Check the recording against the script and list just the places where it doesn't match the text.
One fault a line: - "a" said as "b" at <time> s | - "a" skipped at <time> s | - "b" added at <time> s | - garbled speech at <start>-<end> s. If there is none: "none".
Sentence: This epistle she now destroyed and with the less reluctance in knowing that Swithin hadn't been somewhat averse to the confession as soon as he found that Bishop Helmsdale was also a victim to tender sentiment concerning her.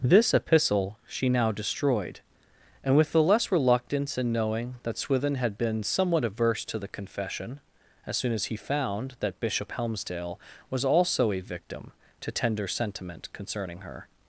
- "hadn't" said as "had" at 5.3 s